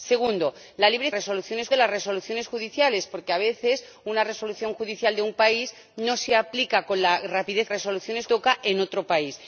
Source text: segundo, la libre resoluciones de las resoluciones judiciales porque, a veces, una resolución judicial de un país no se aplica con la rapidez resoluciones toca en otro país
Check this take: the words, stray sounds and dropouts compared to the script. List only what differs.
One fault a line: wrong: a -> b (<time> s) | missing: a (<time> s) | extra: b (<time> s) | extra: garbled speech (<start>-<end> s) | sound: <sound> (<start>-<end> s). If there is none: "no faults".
no faults